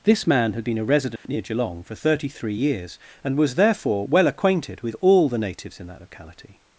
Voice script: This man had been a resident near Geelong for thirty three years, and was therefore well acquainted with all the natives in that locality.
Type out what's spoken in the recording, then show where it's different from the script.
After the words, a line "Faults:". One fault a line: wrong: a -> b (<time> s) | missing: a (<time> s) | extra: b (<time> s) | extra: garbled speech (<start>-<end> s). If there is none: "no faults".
This man had been a resident near Geelong for thirty three years, and was therefore well acquainted with all the natives in that locality.
Faults:
no faults